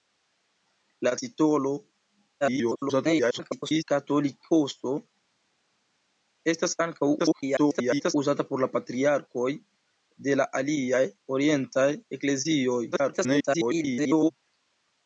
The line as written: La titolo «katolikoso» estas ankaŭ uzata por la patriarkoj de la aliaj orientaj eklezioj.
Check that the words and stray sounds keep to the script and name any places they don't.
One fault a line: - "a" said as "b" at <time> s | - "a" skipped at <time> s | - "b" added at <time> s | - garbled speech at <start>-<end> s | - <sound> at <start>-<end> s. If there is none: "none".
- garbled speech at 2.4-3.8 s
- garbled speech at 7.2-8.1 s
- garbled speech at 12.9-14.3 s